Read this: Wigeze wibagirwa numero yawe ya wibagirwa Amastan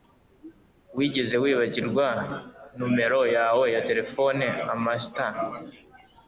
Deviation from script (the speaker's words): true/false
true